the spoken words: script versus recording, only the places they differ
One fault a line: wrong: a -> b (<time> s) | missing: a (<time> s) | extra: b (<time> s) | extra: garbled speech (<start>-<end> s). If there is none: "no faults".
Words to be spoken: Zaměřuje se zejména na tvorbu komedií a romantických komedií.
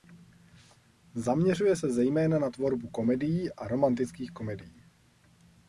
no faults